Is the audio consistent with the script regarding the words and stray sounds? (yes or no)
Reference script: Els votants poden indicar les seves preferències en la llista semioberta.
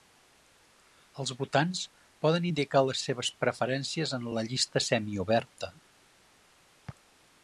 yes